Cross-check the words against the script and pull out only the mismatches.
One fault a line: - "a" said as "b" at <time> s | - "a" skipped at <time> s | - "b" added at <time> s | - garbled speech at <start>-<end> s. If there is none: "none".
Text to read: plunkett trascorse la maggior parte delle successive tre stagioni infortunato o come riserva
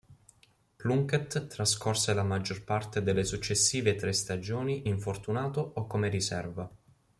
none